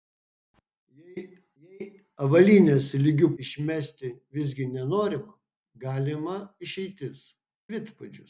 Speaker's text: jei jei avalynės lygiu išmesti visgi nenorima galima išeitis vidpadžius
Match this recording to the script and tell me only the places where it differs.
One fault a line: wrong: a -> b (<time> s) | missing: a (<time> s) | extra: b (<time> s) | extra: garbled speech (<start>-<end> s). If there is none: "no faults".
no faults